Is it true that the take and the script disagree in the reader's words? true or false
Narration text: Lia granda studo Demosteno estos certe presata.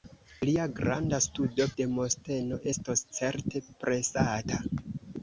false